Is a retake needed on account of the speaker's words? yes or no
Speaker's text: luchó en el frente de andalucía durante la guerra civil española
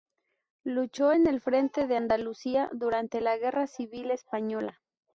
no